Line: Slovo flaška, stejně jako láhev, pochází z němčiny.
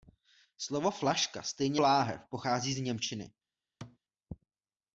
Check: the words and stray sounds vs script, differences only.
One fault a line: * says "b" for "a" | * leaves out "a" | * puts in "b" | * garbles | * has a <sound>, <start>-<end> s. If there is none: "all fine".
* leaves out "jako"
* has a thud, 3.8-4.0 s